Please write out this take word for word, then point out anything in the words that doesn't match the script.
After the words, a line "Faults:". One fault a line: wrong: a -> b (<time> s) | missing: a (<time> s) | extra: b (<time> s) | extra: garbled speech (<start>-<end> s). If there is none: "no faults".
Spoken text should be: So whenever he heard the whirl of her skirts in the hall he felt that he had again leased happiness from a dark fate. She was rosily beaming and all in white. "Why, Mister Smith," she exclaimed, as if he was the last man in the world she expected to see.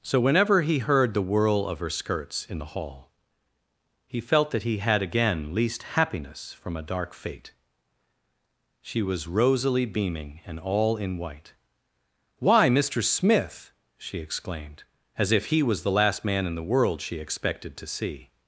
So whenever he heard the whirl of her skirts in the hall he felt that he had again leased happiness from a dark fate. She was rosily beaming and all in white. "Why, Mister Smith," she exclaimed, as if he was the last man in the world she expected to see.
Faults:
no faults